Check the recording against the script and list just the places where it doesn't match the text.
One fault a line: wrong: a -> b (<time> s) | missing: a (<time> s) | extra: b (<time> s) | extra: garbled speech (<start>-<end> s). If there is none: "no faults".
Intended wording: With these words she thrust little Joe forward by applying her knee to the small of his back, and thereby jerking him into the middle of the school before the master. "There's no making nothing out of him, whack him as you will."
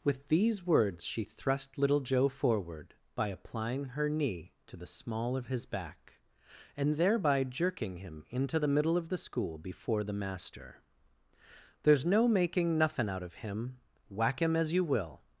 no faults